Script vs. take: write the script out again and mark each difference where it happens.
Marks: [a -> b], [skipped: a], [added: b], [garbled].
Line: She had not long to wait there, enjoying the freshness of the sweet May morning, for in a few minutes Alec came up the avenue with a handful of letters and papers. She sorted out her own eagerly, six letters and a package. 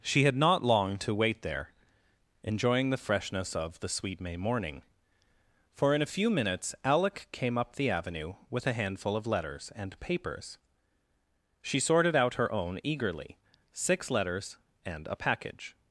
She had not long to wait there, enjoying the freshness of the sweet May morning, for in a few minutes Alec came up the avenue with a handful of letters and papers. She sorted out her own eagerly, six letters and a package.